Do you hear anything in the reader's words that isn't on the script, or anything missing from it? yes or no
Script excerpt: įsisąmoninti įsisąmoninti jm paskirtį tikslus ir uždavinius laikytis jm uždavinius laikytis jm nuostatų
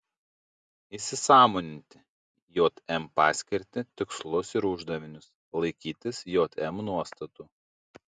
yes